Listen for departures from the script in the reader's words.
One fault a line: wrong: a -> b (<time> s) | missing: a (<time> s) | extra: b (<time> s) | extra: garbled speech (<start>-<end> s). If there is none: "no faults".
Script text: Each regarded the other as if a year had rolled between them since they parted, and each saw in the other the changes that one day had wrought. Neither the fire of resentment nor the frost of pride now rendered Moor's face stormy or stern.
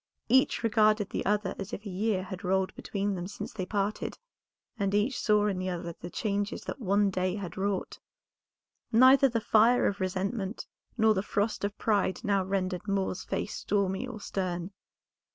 no faults